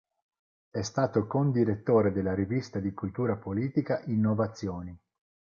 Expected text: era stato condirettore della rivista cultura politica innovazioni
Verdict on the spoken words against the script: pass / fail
fail